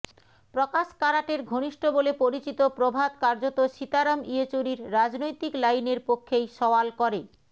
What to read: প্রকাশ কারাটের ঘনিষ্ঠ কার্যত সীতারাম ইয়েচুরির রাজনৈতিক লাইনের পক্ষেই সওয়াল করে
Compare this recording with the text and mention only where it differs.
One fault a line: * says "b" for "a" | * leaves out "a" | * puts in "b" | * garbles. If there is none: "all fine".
* puts in "বলে পরিচিত প্রভাত"